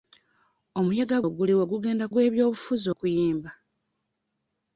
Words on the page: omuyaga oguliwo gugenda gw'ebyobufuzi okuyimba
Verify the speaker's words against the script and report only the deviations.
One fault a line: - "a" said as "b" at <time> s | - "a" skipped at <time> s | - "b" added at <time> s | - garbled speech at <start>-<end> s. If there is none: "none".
none